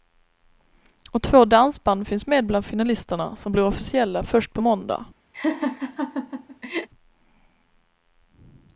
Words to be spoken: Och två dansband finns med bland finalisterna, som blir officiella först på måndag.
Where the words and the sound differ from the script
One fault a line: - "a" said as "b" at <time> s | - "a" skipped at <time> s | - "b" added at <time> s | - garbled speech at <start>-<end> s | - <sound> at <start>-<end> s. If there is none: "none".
- laugh at 5.3-6.9 s